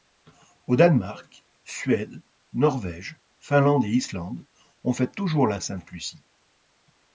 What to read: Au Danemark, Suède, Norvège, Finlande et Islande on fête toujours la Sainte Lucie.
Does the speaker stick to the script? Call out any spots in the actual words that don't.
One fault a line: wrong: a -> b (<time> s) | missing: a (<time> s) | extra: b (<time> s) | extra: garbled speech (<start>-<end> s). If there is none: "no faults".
no faults